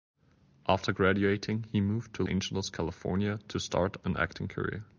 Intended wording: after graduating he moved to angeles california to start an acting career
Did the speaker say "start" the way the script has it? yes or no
yes